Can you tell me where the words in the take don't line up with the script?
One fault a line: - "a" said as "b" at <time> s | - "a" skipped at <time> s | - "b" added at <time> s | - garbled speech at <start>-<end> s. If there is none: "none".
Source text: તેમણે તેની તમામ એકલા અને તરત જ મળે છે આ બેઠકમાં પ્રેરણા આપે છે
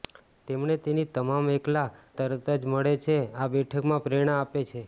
- "અને" skipped at 1.9 s